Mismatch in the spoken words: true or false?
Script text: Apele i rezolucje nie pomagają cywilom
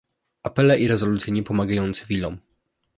false